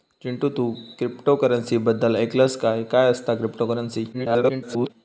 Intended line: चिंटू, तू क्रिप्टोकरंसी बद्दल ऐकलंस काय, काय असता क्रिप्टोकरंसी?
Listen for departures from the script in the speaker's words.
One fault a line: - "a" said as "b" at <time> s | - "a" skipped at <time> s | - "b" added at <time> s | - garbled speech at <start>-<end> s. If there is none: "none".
- garbled speech at 4.1-4.9 s